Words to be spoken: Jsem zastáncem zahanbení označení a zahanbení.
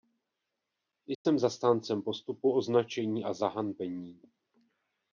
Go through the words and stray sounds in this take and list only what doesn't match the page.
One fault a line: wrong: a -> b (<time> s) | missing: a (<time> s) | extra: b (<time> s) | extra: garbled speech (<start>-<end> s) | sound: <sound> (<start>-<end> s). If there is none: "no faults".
sound: dropout (1.1-1.3 s)
wrong: zahanbení -> postupu (2.0 s)